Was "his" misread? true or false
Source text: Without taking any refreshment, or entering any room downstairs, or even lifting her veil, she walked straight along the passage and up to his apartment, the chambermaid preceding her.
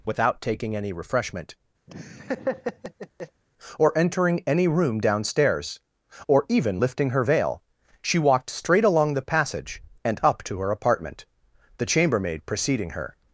true